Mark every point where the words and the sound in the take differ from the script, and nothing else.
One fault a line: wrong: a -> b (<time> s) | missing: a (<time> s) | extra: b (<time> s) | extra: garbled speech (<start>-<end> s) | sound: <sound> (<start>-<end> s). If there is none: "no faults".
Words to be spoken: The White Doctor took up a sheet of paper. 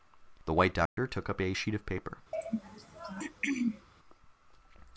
sound: dropout (0.9-1.0 s)
sound: throat clearing (2.3-3.9 s)